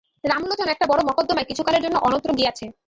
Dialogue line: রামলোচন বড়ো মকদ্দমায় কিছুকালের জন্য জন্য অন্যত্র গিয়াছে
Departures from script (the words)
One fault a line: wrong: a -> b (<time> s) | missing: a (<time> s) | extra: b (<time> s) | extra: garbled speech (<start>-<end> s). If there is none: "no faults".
extra: একটা (0.7 s)
missing: জন্য (2.0 s)